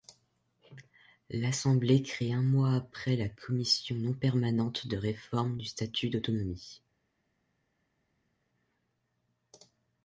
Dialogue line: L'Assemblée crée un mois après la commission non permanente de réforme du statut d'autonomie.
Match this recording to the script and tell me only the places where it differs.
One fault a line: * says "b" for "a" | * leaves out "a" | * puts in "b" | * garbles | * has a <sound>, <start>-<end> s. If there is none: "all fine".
all fine